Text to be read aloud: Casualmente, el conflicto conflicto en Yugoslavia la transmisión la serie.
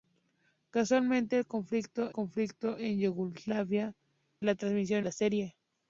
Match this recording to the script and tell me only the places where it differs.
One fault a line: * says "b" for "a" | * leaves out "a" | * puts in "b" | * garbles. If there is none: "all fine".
all fine